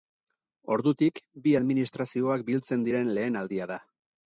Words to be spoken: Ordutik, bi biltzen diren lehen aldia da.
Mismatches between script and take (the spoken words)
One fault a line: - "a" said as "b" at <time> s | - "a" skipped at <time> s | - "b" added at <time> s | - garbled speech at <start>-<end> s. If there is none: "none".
- "administrazioak" added at 1.6 s